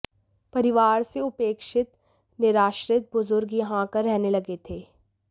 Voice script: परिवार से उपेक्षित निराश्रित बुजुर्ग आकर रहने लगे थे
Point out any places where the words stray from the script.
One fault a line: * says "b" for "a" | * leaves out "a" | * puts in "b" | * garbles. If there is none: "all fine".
* puts in "यहां"